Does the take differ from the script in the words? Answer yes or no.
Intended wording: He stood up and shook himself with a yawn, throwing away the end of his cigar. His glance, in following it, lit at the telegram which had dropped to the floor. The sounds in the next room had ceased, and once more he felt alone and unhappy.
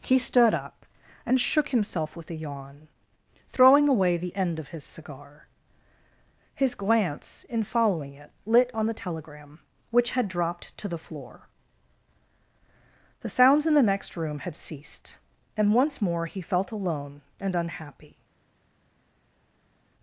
yes